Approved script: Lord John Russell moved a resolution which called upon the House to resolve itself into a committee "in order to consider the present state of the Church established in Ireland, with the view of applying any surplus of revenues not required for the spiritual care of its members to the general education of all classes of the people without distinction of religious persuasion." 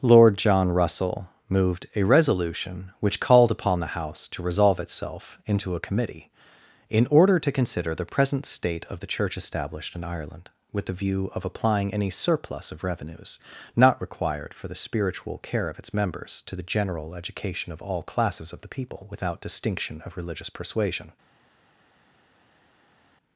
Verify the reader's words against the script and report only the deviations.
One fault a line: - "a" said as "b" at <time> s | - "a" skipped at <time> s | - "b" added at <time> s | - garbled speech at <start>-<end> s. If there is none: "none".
none